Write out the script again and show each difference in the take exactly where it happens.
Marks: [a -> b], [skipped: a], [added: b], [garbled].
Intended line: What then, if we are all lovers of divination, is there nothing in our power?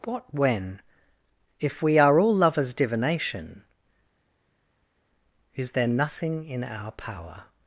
What [then, -> when] if we are all lovers [skipped: of] divination, is there nothing in our power?